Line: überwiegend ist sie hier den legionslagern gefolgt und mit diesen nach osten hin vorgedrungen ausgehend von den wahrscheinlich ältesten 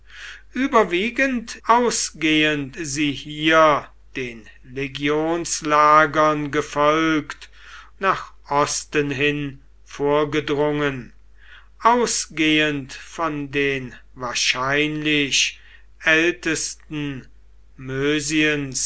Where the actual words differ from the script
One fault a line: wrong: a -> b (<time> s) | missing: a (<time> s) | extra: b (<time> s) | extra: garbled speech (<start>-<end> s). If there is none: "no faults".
wrong: ist -> ausgehend (1.6 s)
missing: und mit diesen (7.5 s)